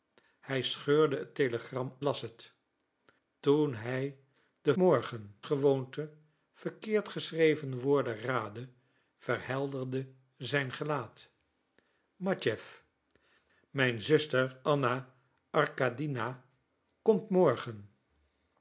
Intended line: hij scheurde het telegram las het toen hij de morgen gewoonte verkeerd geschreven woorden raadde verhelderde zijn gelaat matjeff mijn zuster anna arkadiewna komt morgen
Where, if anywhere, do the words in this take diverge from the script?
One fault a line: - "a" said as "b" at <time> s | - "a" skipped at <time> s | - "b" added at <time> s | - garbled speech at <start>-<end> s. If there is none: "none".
none